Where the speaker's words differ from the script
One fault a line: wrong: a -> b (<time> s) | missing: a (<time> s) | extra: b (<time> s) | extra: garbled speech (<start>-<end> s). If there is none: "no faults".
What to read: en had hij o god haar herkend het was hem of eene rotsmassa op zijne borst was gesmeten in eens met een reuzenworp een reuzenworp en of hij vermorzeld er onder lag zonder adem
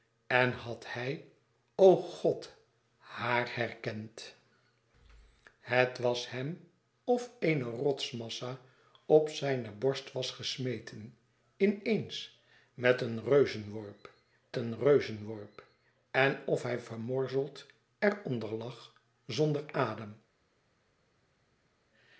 no faults